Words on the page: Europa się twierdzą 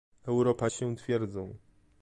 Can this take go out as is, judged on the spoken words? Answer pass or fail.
pass